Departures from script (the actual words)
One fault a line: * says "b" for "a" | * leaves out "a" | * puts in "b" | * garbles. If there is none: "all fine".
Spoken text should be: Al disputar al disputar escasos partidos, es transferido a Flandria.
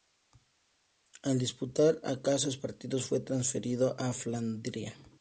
* leaves out "al disputar"
* says "fue" for "es"